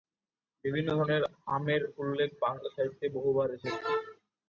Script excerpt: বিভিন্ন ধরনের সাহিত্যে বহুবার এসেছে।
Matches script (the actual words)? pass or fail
fail